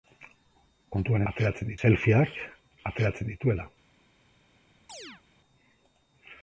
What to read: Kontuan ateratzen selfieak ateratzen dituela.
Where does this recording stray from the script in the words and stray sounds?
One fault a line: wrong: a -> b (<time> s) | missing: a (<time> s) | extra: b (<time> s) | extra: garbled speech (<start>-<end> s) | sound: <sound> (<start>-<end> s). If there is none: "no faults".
sound: chirp (4.9-5.2 s)